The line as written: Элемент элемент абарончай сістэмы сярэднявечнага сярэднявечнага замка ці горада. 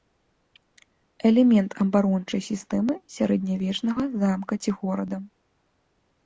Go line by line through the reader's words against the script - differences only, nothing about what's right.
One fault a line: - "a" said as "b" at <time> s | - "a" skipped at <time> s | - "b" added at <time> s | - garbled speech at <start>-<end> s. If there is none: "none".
- "элемент" skipped at 1.7 s
- "сярэднявечнага" skipped at 4.1 s